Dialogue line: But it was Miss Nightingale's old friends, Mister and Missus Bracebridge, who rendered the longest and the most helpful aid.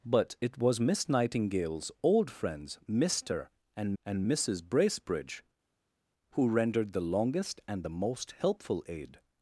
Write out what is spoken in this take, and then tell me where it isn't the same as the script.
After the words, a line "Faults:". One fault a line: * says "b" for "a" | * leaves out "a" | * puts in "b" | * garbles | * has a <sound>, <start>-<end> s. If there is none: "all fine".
But it was Miss Nightingale's old friends, Mister and and Missus Bracebridge, who rendered the longest and the most helpful aid.
Faults:
* puts in "and"